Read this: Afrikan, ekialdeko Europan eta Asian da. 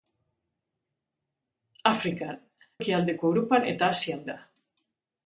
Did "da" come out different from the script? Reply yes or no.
no